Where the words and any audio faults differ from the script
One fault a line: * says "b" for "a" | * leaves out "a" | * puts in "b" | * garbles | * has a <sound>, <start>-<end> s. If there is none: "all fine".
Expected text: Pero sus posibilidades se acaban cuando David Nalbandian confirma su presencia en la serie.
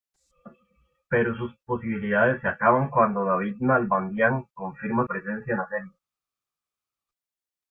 * leaves out "su"